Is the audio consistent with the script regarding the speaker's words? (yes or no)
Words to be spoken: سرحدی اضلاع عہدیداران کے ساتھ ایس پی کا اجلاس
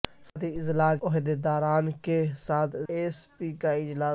yes